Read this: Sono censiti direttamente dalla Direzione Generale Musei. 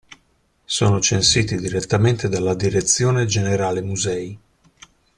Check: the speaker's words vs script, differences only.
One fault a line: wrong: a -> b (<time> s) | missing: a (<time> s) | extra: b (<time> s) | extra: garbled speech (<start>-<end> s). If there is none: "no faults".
no faults